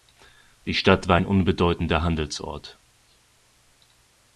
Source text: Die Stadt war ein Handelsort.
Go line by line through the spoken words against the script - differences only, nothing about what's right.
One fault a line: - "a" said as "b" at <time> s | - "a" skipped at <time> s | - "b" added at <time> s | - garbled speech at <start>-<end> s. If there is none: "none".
- "unbedeutender" added at 1.3 s